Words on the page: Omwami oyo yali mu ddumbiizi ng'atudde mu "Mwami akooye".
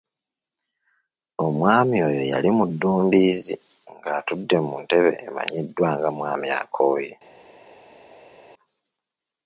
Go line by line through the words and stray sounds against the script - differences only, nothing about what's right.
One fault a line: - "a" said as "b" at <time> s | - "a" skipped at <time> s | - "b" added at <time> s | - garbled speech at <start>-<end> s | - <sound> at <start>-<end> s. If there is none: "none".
- "ntebe emanyiddwa nga" added at 4.8 s